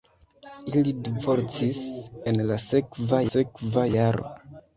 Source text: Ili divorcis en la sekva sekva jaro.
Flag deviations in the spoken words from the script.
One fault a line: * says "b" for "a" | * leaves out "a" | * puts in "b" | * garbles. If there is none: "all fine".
all fine